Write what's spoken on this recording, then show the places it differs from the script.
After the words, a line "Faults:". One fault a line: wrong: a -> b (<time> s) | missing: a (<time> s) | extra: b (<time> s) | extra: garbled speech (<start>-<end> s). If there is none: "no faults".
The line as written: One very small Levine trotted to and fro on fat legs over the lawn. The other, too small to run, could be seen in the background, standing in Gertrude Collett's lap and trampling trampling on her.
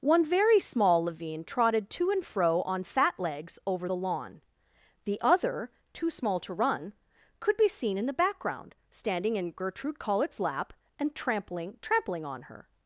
One very small Levine trotted to and fro on fat legs over the lawn. The other, too small to run, could be seen in the background, standing in Gertrude Collett's lap and trampling trampling on her.
Faults:
no faults